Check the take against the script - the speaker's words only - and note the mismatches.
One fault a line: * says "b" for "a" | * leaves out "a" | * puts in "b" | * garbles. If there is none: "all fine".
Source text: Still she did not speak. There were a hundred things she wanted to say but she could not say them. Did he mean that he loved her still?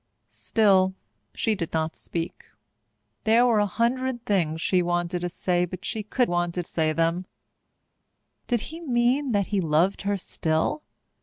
* says "wanted" for "not"